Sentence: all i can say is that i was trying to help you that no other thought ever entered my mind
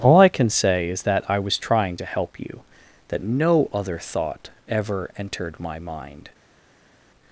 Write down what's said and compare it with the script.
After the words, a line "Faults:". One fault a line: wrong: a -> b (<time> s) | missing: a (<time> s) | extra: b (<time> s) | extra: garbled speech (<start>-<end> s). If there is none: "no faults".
all i can say is that i was trying to help you that no other thought ever entered my mind
Faults:
no faults